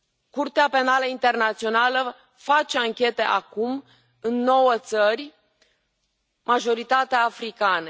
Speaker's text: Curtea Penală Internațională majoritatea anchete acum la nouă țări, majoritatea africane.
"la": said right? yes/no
no